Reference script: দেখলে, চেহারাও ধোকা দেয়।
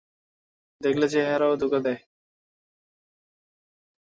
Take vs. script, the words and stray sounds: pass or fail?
pass